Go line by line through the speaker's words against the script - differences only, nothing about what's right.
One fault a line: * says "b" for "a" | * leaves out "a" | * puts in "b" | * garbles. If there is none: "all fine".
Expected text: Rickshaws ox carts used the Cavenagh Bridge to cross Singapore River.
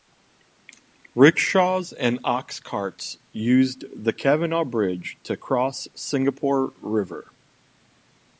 * puts in "and"